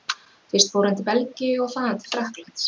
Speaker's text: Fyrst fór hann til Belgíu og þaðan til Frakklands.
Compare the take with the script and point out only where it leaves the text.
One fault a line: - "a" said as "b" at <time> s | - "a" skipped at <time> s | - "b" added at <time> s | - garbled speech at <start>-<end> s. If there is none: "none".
none